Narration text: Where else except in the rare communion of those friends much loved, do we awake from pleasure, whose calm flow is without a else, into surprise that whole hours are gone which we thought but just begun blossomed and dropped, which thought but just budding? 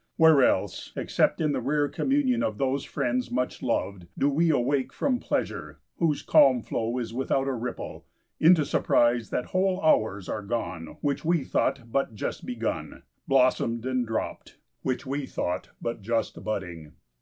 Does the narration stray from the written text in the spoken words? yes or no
yes